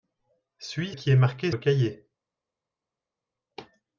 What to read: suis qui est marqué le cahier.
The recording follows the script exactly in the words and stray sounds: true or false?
true